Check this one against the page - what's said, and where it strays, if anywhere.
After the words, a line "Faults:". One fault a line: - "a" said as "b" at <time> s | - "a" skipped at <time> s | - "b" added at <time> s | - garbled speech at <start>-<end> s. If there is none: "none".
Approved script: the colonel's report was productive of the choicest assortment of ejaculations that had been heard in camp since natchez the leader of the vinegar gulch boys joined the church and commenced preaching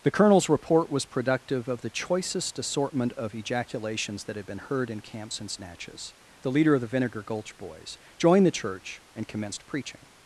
the colonel's report was productive of the choicest assortment of ejaculations that had been heard in camp since natchez the leader of the vinegar gulch boys joined the church and commenced preaching
Faults:
none